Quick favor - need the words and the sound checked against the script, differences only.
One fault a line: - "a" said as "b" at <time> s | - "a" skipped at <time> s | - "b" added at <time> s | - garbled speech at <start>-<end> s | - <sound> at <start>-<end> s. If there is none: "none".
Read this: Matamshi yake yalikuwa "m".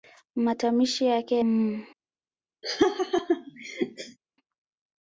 - "yalikuwa" skipped at 1.4 s
- laugh at 2.6-4.2 s